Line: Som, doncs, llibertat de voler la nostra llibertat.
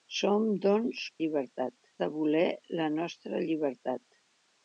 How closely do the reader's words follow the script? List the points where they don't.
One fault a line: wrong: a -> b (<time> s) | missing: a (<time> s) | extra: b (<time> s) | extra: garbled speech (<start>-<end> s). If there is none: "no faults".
no faults